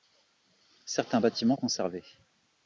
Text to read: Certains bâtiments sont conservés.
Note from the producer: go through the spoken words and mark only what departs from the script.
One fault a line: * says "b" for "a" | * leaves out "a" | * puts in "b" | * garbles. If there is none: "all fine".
* leaves out "sont"